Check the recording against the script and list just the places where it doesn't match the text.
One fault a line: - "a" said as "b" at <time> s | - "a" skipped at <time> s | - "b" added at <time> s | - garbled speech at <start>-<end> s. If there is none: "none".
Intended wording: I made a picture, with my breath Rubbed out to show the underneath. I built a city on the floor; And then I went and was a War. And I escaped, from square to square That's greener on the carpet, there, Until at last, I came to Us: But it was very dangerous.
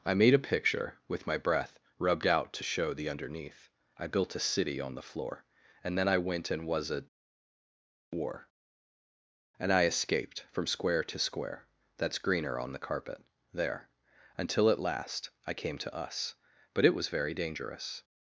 none